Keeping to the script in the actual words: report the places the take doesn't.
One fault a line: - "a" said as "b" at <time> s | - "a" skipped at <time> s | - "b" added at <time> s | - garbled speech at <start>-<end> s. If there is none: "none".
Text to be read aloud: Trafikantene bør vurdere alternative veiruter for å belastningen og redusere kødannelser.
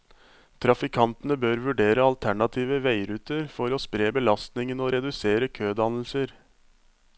- "spre" added at 3.8 s